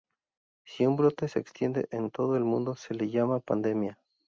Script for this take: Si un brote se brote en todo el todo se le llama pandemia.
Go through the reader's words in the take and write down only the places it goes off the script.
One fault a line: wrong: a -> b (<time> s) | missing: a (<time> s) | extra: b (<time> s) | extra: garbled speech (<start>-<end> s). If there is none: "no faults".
wrong: brote -> extiende (1.4 s)
wrong: todo -> mundo (2.4 s)